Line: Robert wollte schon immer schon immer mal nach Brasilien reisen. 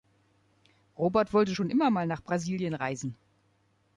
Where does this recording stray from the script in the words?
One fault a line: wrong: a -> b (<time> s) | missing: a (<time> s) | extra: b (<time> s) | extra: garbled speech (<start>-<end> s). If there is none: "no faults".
missing: schon immer (1.9 s)